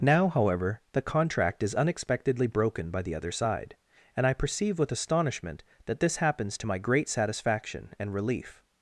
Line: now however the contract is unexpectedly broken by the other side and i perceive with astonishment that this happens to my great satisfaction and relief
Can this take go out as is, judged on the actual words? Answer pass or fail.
pass